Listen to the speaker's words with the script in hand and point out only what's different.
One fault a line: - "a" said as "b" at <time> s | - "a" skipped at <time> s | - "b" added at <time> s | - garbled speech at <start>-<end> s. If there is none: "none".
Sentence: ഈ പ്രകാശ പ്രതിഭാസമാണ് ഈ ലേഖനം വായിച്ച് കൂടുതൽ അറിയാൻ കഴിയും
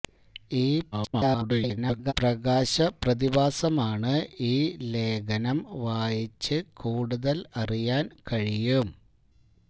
- garbled speech at 0.9-2.1 s